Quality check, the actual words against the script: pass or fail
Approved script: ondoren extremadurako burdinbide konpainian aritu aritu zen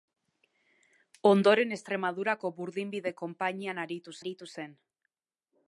pass